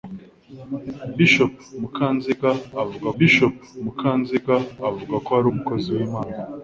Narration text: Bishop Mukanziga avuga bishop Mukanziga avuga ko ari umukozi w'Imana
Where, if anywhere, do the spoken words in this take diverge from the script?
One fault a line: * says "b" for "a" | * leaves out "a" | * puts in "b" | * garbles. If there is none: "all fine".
all fine